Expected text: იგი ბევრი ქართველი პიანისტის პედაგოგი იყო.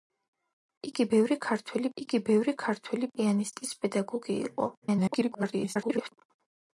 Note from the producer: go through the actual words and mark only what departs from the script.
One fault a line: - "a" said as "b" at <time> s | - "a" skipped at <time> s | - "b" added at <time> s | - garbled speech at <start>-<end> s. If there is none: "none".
- "იგი ბევრი ქართველი" added at 2.0 s
- garbled speech at 4.8-6.1 s